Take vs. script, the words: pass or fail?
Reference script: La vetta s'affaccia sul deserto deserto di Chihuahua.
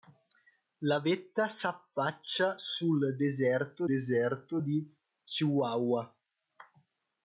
pass